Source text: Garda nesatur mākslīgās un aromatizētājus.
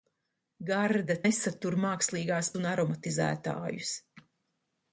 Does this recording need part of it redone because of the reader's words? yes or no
no